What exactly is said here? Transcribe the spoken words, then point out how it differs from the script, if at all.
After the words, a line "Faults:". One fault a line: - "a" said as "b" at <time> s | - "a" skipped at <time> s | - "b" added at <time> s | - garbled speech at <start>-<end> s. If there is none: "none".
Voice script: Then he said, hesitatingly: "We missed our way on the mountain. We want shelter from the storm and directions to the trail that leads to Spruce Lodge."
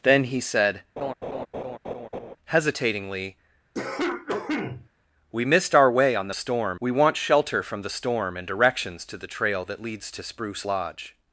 Then he said, hesitatingly: "We missed our way on the storm. We want shelter from the storm and directions to the trail that leads to Spruce Lodge."
Faults:
- "mountain" said as "storm" at 6.3 s